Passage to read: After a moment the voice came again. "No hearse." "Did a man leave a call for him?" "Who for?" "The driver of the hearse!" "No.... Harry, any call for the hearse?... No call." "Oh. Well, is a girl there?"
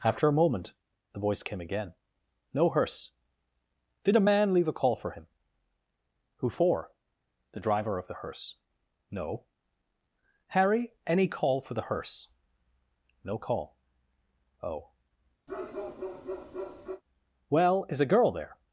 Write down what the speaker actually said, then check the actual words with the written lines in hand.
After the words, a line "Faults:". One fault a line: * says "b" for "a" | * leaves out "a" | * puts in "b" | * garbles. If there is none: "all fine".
After a moment the voice came again. "No hearse." "Did a man leave a call for him?" "Who for?" "The driver of the hearse!" "No.... Harry, any call for the hearse?... No call." "Oh. Well, is a girl there?"
Faults:
all fine